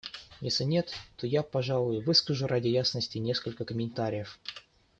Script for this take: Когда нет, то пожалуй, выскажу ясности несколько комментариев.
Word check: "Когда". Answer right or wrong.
wrong